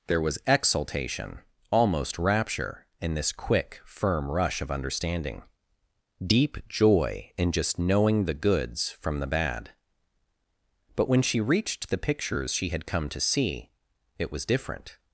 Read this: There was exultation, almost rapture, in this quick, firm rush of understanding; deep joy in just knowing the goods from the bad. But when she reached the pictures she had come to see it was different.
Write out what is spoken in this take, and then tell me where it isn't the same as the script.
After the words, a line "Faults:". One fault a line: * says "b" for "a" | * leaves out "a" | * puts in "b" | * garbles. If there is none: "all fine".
There was exultation, almost rapture, in this quick, firm rush of understanding; deep joy in just knowing the goods from the bad. But when she reached the pictures she had come to see it was different.
Faults:
all fine